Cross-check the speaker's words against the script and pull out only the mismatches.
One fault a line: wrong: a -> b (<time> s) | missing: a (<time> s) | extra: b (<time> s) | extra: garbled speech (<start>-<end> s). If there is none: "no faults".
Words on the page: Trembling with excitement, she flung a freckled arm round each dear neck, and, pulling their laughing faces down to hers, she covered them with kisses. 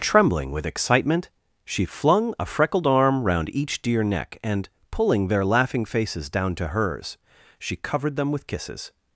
no faults